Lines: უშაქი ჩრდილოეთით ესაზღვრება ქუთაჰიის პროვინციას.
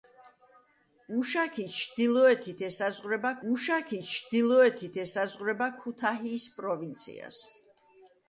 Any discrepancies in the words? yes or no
yes